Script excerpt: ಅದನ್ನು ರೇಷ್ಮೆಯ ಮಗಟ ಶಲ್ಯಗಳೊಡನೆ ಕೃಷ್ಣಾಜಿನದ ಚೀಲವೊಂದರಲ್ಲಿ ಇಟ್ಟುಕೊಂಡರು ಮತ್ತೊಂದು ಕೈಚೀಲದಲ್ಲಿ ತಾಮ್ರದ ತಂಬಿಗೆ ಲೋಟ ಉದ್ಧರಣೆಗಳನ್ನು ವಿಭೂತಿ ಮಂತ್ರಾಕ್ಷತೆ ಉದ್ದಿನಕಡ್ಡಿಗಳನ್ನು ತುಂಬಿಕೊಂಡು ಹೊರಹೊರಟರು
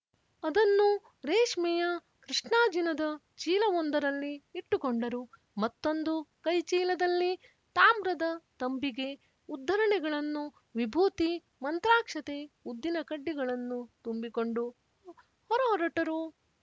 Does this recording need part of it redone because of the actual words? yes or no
yes